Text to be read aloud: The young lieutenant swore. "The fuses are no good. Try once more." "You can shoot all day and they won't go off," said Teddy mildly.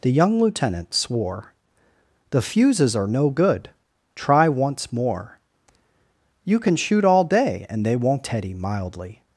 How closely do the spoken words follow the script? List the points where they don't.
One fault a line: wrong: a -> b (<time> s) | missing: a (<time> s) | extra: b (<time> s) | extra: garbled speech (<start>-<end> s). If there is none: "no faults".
missing: go off said (8.2 s)